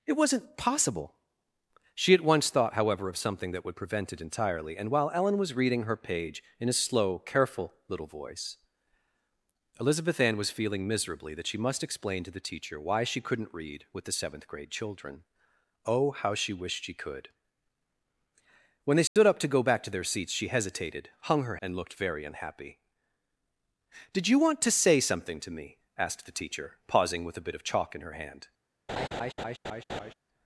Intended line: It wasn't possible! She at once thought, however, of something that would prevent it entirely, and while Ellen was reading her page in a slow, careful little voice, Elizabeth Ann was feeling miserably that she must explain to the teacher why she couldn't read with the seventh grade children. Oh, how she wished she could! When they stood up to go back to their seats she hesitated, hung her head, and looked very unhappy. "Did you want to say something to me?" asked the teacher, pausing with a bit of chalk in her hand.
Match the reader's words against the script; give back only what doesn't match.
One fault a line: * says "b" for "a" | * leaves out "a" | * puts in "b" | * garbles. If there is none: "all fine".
* leaves out "head"